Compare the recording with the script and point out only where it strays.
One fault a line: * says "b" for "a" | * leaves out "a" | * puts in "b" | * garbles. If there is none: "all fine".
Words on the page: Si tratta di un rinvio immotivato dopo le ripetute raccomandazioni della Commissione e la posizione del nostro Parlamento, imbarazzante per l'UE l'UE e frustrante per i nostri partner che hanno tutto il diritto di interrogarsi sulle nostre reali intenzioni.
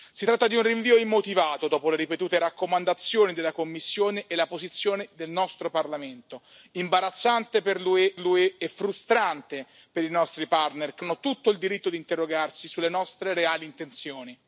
all fine